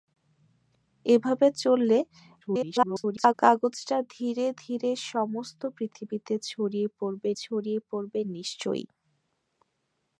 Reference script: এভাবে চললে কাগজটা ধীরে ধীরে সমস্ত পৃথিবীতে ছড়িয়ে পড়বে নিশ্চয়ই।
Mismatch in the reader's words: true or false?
true